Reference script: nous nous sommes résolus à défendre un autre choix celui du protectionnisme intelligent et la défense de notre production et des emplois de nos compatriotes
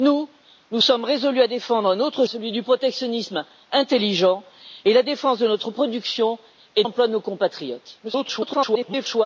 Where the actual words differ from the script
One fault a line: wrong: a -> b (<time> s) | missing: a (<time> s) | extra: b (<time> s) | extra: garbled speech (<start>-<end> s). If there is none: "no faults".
missing: choix (2.2 s)
missing: des (6.8 s)
extra: garbled speech (8.0-9.3 s)